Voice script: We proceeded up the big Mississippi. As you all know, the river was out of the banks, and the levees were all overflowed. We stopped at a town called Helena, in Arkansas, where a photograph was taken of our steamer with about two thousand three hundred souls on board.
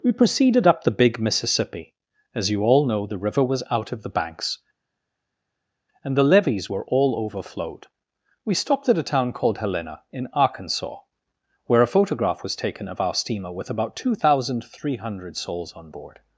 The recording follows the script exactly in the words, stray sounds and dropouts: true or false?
true